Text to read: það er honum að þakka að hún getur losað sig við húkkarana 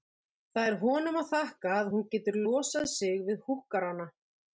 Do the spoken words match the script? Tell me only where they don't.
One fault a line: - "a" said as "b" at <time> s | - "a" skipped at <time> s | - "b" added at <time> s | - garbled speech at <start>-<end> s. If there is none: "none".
none